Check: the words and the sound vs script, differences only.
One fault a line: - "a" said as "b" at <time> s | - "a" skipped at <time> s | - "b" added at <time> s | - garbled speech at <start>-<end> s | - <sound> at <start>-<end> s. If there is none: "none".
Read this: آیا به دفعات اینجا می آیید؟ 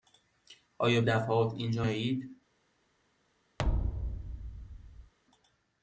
- "به" skipped at 1.0 s
- "می" skipped at 1.9 s
- thud at 3.6-5.1 s